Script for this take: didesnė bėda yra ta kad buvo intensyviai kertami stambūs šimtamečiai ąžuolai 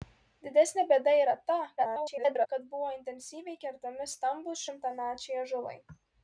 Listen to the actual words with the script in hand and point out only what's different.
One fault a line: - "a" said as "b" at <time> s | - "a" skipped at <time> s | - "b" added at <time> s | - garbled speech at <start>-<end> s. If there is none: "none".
- garbled speech at 1.8-2.5 s